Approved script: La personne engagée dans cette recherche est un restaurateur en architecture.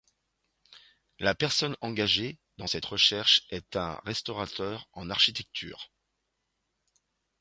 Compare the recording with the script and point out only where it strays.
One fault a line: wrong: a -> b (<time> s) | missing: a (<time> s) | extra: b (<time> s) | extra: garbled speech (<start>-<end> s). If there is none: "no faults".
no faults